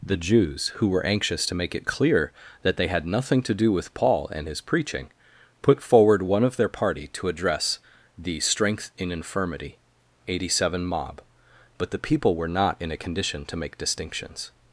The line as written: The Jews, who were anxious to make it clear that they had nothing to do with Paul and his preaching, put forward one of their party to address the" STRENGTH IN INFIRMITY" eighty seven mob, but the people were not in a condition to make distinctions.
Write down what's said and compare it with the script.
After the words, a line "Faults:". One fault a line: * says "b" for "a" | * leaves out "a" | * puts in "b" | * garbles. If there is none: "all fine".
The Jews, who were anxious to make it clear that they had nothing to do with Paul and his preaching, put forward one of their party to address the" STRENGTH IN INFIRMITY" eighty seven mob, but the people were not in a condition to make distinctions.
Faults:
all fine